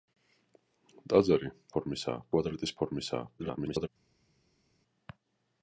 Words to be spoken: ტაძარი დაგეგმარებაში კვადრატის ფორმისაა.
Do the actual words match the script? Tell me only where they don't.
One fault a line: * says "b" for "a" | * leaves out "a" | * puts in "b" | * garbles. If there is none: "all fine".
* says "ფორმისაა" for "დაგეგმარებაში"
* garbles